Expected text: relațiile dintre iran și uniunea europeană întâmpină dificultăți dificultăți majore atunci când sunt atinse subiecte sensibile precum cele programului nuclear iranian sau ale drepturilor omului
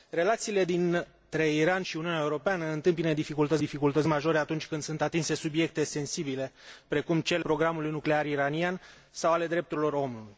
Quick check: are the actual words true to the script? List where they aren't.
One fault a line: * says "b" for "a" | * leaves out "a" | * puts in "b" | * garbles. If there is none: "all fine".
all fine